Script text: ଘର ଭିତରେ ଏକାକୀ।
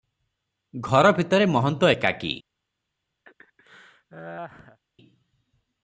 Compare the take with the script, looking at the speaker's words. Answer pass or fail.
fail